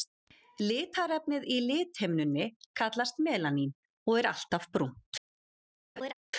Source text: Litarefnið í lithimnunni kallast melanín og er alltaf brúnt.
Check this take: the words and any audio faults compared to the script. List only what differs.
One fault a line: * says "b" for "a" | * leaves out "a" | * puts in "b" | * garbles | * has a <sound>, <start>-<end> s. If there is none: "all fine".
* has a laugh, 6.0-6.1 s